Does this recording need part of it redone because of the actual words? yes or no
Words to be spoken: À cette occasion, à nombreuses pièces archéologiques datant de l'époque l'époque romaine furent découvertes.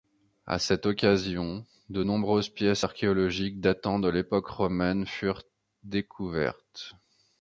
yes